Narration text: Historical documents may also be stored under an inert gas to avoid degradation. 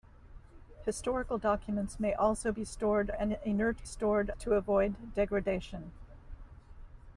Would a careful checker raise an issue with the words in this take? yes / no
yes